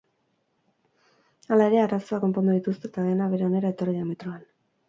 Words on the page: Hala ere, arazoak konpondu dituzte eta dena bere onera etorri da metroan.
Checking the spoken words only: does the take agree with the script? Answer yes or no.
yes